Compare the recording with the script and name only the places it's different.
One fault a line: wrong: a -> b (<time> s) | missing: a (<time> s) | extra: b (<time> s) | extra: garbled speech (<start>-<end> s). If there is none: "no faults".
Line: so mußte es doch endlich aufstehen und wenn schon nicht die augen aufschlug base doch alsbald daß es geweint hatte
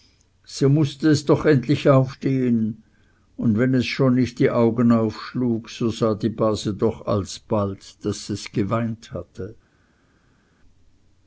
extra: es (3.8 s)
extra: so sah die (5.7 s)